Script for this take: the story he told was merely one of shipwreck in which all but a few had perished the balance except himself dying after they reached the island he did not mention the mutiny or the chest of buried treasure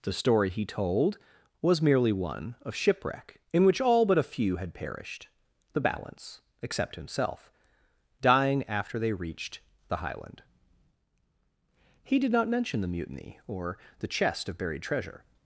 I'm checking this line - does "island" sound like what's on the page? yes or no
no